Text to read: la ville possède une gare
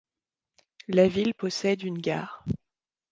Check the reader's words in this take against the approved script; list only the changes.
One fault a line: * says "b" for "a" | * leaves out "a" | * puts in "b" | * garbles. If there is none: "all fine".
all fine